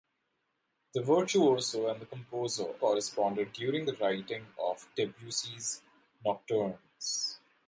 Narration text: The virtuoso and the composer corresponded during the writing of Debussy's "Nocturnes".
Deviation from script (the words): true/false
false